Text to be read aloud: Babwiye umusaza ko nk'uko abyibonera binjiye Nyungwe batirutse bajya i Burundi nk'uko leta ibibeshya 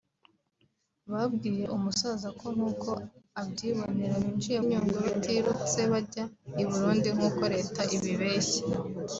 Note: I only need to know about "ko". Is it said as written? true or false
true